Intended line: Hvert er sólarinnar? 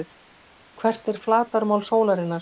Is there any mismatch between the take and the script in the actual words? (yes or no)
yes